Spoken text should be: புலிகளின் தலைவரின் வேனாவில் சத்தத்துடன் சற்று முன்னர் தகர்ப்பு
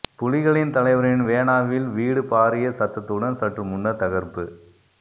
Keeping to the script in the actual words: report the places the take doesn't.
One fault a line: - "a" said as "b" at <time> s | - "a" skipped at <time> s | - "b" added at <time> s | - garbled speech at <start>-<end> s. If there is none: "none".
- "வீடு பாரிய" added at 1.9 s